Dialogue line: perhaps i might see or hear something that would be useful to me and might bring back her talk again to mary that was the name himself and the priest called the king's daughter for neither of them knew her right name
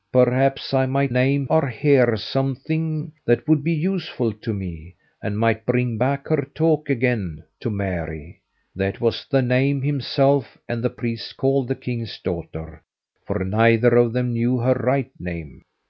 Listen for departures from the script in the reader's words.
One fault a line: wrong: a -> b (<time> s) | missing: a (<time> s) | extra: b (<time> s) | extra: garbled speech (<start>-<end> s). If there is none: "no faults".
wrong: see -> name (1.1 s)